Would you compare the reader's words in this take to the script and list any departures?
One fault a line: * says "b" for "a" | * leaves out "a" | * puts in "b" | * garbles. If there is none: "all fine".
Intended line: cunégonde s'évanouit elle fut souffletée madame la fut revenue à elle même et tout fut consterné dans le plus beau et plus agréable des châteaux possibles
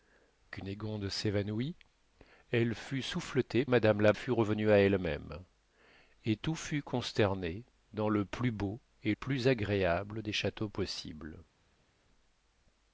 all fine